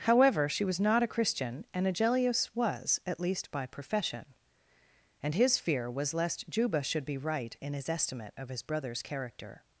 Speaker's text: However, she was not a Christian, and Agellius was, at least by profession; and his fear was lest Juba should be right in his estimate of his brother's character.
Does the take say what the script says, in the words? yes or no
yes